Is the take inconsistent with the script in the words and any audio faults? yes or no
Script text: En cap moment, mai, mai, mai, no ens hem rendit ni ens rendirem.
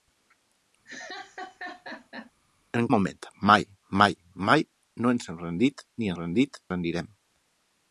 yes